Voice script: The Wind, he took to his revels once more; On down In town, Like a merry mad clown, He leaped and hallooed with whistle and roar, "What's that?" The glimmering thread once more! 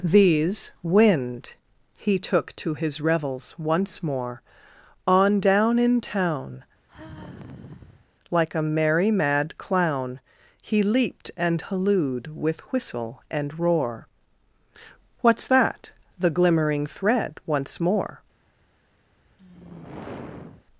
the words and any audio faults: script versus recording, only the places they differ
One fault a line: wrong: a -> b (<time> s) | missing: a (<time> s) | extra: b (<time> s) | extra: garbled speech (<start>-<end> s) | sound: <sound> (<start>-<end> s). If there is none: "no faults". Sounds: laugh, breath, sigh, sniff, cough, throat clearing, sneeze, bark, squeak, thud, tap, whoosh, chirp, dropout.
wrong: The -> These (0.0 s)
sound: sigh (6.9-8.1 s)
sound: sigh (19.3-20.7 s)